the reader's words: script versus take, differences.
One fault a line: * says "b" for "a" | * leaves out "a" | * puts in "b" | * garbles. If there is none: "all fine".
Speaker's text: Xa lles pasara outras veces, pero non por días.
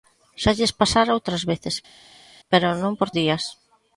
all fine